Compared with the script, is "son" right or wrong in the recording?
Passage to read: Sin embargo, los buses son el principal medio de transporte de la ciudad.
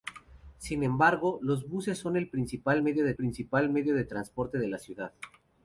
right